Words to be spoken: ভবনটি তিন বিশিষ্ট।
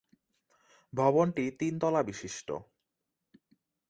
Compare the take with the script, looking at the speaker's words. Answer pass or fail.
fail